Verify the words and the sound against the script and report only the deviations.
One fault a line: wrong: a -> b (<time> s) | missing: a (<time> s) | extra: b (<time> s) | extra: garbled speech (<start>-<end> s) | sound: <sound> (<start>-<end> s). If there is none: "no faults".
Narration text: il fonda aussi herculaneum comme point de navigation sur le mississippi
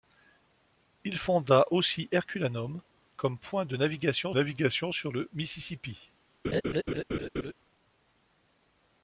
extra: navigation (4.3 s)
sound: laugh (6.4-7.5 s)